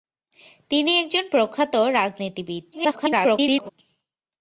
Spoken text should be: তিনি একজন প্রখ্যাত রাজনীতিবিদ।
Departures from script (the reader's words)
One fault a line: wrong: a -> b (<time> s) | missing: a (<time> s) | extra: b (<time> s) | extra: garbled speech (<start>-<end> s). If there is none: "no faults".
extra: garbled speech (2.7-3.7 s)